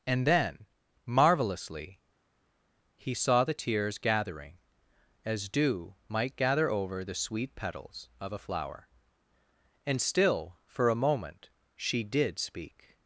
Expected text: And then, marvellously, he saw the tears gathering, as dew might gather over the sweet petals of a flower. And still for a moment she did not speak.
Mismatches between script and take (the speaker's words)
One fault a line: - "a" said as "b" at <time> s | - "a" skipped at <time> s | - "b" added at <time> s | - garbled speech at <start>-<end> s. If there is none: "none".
- "not" skipped at 12.4 s